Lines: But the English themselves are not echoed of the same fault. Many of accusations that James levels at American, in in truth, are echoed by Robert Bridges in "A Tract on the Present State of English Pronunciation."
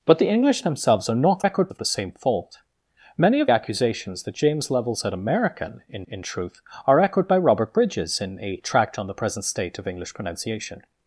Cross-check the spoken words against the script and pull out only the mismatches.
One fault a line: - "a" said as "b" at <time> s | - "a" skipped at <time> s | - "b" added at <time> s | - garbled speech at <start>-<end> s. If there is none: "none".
none